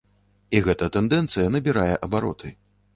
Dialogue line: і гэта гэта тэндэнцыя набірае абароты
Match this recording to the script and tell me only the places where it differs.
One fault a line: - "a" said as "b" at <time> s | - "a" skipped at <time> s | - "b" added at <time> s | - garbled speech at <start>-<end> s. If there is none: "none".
- "гэта" skipped at 0.9 s